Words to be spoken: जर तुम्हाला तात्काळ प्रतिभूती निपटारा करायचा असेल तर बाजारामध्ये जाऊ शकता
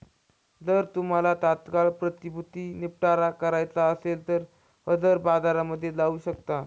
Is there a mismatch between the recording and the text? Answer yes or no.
yes